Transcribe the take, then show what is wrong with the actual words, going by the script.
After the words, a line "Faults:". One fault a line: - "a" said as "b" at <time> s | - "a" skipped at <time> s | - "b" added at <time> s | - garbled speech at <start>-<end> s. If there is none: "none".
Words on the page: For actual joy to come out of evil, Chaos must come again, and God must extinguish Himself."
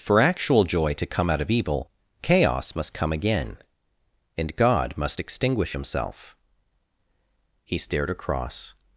For actual joy to come out of evil, Chaos must come again, and God must extinguish Himself." He stared across
Faults:
- "He stared across" added at 7.7 s